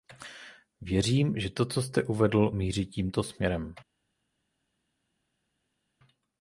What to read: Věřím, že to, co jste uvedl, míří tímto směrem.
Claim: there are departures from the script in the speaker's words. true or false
false